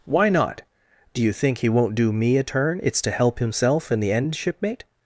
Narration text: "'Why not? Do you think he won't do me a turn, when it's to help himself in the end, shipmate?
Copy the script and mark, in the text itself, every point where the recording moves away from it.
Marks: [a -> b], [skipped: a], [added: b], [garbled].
"'Why not? Do you think he won't do me a turn, [skipped: when] it's to help himself in the end, shipmate?